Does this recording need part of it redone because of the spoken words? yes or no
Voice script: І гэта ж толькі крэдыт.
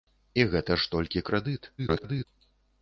yes